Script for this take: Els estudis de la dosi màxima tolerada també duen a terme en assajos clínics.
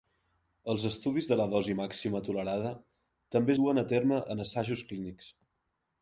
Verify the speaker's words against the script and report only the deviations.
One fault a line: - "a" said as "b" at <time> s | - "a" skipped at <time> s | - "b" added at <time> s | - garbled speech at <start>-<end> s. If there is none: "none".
none